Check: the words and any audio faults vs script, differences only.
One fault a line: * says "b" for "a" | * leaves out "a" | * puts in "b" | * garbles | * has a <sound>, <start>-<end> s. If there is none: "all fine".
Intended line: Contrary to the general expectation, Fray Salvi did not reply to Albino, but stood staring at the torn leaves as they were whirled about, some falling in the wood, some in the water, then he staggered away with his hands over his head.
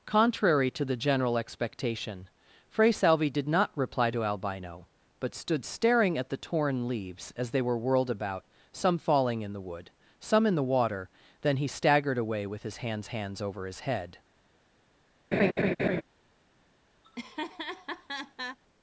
* puts in "hands"
* has a laugh, 15.3-16.0 s
* has a laugh, 17.0-18.6 s